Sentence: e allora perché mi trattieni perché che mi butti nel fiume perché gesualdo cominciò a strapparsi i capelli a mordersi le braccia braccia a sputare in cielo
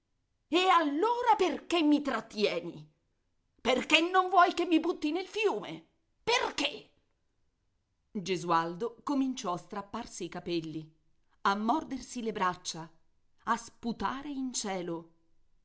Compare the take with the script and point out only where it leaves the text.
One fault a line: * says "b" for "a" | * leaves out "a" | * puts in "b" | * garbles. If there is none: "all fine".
* puts in "non vuoi"
* leaves out "braccia"